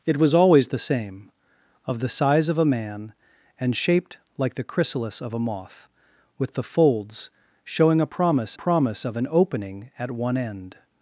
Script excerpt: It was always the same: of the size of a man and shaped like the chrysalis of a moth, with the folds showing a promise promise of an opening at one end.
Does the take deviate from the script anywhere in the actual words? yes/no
no